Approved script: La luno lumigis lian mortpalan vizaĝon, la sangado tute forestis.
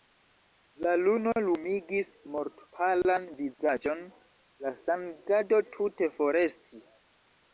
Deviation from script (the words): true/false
true